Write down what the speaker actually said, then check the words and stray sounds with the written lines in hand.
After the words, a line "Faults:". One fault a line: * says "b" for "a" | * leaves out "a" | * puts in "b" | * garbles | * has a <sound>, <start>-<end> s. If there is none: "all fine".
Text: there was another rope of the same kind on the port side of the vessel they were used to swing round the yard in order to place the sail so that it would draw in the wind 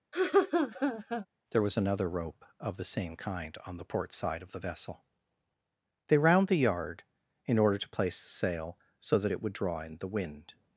there was another rope of the same kind on the port side of the vessel they round the yard in order to place the sail so that it would draw in the wind
Faults:
* has a laugh, 0.1-1.3 s
* leaves out "were used to swing"